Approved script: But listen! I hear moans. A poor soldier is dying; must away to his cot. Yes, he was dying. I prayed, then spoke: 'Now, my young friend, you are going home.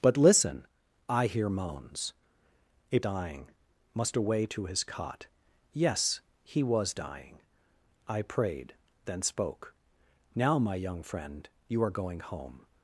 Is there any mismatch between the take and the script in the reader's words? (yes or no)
yes